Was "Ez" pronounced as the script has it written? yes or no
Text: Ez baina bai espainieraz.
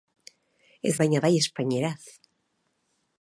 yes